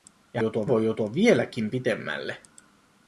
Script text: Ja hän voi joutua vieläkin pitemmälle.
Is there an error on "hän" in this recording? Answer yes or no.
yes